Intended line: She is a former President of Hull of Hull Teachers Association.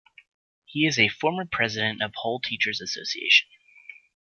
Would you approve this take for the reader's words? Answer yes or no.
no